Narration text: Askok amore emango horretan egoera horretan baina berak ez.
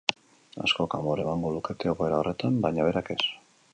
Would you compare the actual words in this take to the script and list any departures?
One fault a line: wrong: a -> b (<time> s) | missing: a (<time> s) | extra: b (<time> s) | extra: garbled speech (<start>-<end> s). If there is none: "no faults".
wrong: horretan -> lukete (1.5 s)